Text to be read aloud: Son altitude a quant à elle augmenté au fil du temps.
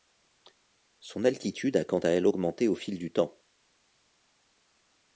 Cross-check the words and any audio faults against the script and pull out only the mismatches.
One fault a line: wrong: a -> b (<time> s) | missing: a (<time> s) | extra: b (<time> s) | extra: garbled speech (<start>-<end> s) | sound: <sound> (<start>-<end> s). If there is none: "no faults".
no faults